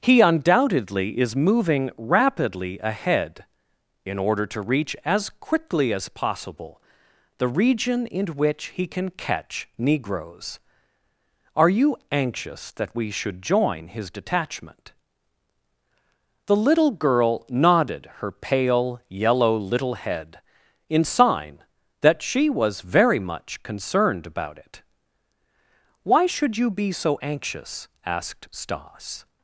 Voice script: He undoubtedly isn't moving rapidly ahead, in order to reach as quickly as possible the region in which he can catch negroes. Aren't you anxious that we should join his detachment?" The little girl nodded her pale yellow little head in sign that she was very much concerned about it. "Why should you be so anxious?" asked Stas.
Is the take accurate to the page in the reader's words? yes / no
no